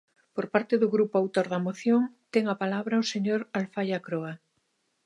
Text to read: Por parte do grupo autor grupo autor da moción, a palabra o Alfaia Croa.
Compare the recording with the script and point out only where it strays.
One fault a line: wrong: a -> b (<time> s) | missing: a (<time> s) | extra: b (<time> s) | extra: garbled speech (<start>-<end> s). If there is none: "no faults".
missing: grupo autor (1.4 s)
extra: ten (2.3 s)
extra: señor (3.1 s)